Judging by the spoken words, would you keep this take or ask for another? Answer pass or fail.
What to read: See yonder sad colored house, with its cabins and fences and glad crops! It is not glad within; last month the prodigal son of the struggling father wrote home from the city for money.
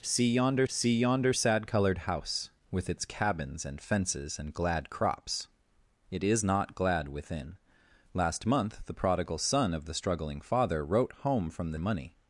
fail